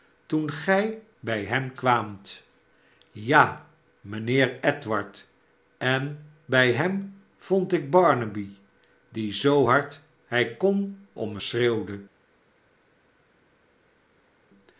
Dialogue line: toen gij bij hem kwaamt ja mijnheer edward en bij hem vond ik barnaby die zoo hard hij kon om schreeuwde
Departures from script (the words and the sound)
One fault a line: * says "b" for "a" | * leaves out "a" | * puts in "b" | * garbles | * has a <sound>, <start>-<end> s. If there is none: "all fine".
all fine